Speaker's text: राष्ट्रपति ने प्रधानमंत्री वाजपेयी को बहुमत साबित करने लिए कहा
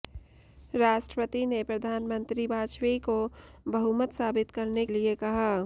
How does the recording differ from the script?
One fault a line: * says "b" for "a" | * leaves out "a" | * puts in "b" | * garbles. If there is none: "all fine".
all fine